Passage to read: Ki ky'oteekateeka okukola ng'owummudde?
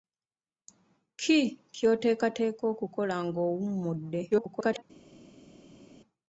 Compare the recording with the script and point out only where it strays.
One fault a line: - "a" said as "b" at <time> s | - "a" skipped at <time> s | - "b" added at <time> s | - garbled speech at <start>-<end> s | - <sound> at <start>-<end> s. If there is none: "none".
- garbled speech at 4.3-4.8 s